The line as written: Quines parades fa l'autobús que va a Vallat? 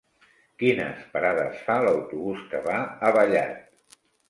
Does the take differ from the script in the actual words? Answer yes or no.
no